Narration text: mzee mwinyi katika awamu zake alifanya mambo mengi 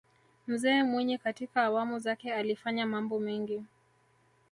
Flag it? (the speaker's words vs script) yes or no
no